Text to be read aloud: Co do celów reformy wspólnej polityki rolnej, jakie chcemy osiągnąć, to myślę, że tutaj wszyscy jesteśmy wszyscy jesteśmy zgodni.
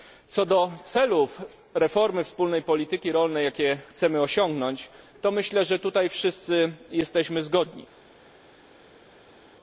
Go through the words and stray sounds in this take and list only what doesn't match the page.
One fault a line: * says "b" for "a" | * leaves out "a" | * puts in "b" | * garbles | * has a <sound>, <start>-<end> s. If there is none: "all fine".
* leaves out "wszyscy jesteśmy"